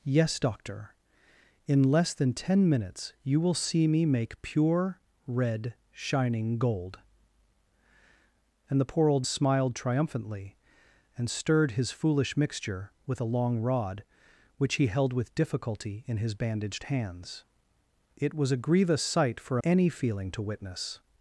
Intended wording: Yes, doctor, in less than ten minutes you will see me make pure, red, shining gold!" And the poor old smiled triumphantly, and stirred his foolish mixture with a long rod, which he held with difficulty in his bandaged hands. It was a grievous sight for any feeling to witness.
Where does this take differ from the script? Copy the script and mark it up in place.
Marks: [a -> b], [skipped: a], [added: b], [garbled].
Yes, doctor, in less than ten minutes you will see me make pure, red, shining gold!" And the poor old smiled triumphantly, and stirred his foolish mixture with a long rod, which he held with difficulty in his bandaged hands. It was a grievous sight for any feeling to witness.